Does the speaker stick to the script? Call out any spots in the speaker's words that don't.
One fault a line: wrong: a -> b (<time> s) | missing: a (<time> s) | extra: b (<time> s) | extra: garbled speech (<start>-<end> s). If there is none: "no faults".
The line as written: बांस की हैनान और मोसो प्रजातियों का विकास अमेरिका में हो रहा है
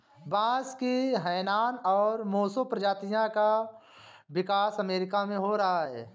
no faults